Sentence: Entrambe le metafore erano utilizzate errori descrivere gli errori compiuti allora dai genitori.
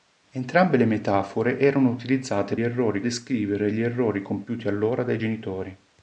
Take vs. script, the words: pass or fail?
pass